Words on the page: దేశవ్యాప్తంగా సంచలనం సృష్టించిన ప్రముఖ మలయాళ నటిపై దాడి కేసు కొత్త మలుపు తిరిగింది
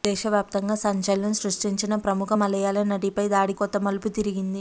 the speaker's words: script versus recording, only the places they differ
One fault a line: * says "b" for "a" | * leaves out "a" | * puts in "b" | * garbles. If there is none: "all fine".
* leaves out "కేసు"